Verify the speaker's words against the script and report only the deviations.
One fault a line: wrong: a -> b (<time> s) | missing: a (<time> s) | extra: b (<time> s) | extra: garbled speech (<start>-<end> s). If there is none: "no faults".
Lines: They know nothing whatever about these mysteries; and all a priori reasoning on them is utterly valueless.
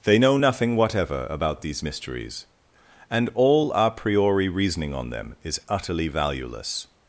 no faults